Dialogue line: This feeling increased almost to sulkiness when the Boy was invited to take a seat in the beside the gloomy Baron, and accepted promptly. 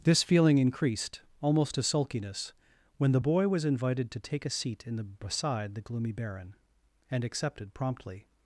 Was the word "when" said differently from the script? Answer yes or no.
no